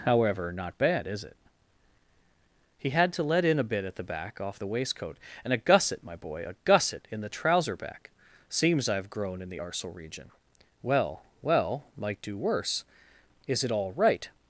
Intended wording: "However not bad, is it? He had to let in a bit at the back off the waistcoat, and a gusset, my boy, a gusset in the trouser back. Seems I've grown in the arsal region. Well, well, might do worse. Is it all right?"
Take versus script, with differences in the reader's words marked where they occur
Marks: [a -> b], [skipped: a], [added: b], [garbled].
"However not bad, is it? He had to let in a bit at the back off the waistcoat, and a gusset, my boy, a gusset in the trouser back. Seems I've grown in the arsal region. Well, well, might do worse. Is it all right?"